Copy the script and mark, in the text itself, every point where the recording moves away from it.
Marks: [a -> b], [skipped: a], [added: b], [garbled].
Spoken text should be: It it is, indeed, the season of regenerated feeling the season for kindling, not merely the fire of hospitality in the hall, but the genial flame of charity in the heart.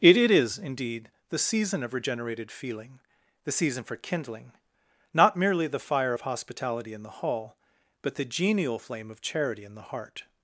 It it is, indeed, the season of regenerated feeling the season for kindling, not merely the fire of hospitality in the hall, but the genial flame of charity in the heart.